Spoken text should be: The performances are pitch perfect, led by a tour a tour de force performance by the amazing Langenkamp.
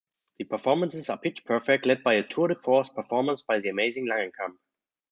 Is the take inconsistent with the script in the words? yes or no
yes